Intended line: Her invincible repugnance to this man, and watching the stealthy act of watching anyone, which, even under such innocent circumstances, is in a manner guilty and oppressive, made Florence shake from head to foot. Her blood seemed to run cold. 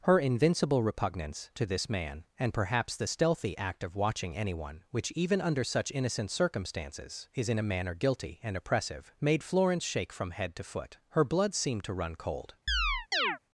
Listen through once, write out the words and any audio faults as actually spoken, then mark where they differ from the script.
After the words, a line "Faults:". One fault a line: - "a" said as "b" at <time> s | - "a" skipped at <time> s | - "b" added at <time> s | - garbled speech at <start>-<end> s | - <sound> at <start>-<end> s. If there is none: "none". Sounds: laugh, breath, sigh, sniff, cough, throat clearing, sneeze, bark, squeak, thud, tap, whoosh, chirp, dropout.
Her invincible repugnance to this man, and perhaps the stealthy act of watching anyone, which, even under such innocent circumstances, is in a manner guilty and oppressive, made Florence shake from head to foot. Her blood seemed to run cold.
Faults:
- "watching" said as "perhaps" at 2.5 s
- chirp at 12.7-13.4 s